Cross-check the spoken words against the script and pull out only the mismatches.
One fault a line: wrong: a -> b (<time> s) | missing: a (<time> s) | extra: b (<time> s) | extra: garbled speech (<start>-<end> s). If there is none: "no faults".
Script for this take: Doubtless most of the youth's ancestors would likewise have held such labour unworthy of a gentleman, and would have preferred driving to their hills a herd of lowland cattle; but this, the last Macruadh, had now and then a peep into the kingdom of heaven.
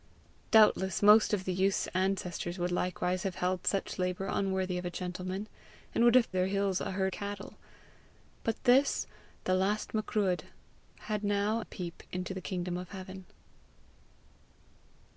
missing: preferred driving to (6.3 s)
missing: of lowland (7.1 s)
missing: and then (11.6 s)